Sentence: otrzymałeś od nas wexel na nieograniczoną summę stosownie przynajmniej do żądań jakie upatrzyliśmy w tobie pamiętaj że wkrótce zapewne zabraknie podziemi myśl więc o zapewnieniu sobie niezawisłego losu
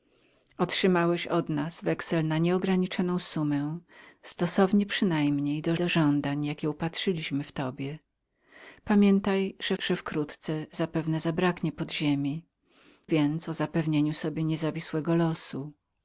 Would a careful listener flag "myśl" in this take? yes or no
yes